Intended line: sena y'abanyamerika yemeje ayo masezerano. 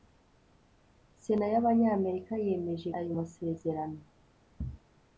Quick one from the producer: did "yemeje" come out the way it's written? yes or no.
yes